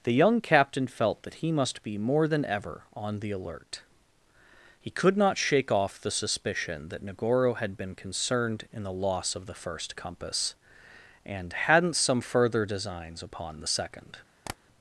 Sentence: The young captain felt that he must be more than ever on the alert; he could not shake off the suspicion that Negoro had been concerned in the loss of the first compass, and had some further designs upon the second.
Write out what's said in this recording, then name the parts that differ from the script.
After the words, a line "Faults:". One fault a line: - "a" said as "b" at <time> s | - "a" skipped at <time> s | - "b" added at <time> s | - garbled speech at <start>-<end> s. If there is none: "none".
The young captain felt that he must be more than ever on the alert; he could not shake off the suspicion that Negoro had been concerned in the loss of the first compass, and hadn't some further designs upon the second.
Faults:
- "had" said as "hadn't" at 11.5 s